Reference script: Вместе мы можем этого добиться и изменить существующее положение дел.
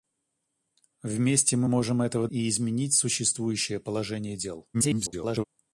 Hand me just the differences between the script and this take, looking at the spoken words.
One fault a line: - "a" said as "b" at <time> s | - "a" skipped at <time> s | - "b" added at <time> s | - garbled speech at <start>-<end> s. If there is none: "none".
- "добиться" skipped at 2.3 s
- garbled speech at 4.7-5.4 s